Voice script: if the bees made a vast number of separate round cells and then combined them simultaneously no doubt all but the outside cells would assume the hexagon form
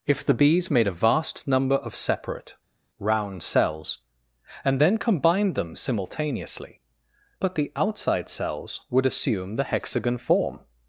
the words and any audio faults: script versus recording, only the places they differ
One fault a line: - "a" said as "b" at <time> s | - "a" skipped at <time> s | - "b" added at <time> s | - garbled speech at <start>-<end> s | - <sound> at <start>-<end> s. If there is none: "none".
- "no doubt all" skipped at 6.8 s